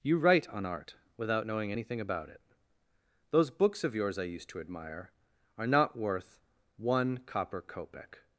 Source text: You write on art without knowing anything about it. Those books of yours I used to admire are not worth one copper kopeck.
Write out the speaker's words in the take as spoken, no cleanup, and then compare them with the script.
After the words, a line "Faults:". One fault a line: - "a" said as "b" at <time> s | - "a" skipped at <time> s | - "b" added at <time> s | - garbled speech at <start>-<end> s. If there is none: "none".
You write on art without knowing anything about it. Those books of yours I used to admire are not worth one copper kopeck.
Faults:
none